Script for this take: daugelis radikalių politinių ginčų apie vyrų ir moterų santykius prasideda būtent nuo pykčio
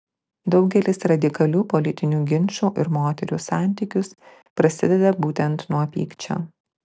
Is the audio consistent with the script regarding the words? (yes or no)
no